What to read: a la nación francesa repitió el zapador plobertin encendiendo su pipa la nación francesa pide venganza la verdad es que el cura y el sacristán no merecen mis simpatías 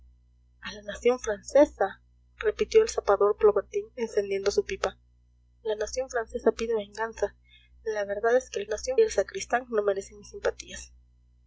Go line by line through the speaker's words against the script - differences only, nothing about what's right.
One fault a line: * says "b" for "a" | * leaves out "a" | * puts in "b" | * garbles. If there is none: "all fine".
* says "nación" for "cura"